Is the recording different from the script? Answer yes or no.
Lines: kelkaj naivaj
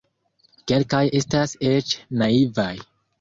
yes